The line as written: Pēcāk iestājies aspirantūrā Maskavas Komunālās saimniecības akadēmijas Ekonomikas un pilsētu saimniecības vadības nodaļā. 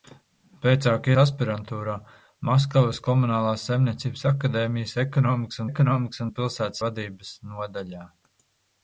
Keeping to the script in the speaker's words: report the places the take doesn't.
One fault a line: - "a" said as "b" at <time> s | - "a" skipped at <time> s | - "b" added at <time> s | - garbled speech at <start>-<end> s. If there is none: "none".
- "iestājies" skipped at 1.1 s
- "Ekonomikas" added at 5.7 s
- "saimniecības" skipped at 6.8 s